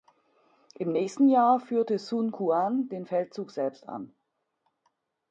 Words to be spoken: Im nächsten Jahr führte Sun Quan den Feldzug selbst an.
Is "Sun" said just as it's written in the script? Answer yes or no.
yes